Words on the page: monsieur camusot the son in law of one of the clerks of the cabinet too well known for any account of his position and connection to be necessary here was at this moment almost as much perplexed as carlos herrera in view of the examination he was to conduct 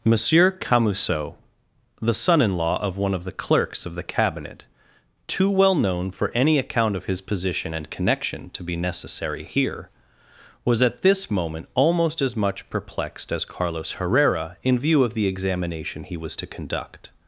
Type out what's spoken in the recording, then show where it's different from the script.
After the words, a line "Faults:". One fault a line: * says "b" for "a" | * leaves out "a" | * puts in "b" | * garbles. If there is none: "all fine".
monsieur camusot the son in law of one of the clerks of the cabinet too well known for any account of his position and connection to be necessary here was at this moment almost as much perplexed as carlos herrera in view of the examination he was to conduct
Faults:
all fine